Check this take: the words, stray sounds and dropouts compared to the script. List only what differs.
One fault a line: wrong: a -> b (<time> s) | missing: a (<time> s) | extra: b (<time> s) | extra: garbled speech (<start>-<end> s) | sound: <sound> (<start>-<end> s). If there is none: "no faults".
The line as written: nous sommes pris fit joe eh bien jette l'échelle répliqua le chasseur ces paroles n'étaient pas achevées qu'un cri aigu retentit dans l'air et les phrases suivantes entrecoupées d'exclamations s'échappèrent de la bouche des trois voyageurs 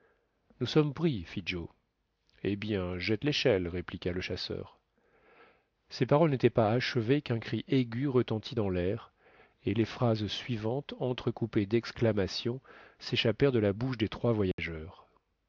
sound: dropout (14.5-14.6 s)